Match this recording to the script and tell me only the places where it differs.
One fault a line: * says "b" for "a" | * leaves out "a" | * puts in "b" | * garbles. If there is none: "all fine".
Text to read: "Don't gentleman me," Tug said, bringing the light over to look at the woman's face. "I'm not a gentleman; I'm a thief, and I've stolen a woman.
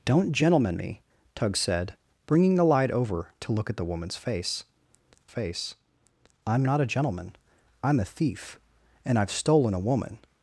* puts in "face"